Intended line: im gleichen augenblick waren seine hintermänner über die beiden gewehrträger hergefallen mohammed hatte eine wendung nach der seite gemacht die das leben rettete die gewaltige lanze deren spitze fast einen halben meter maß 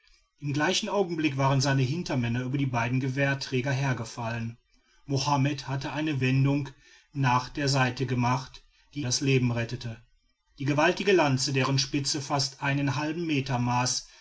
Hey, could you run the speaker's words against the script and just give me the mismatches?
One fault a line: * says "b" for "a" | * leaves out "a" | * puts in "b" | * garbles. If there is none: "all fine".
all fine